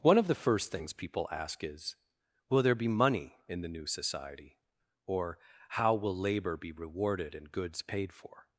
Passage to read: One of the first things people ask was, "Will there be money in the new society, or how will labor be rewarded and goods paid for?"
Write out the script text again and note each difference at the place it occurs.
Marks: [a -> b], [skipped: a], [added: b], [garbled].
One of the first things people ask [was, -> is] "Will there be money in the new society, or how will labor be rewarded and goods paid for?"